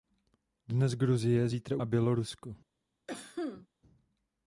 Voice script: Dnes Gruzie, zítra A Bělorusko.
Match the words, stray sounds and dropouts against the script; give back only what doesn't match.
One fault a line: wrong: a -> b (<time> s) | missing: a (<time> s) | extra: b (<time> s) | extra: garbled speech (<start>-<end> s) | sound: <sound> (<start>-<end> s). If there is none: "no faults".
sound: cough (3.1-3.7 s)